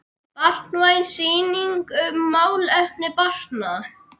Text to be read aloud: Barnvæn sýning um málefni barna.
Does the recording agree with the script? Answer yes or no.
yes